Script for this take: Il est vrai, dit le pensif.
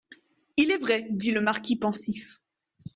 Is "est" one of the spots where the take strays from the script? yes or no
no